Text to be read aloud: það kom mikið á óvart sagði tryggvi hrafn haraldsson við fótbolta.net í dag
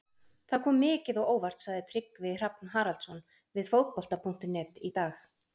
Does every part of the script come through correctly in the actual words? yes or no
yes